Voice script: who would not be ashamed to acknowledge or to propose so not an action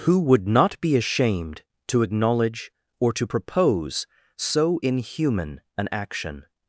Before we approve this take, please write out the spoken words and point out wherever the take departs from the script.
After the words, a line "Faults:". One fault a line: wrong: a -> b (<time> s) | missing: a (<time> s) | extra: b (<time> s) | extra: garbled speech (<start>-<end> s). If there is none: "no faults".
who would not be ashamed to acknowledge or to propose so inhuman an action
Faults:
wrong: not -> inhuman (4.8 s)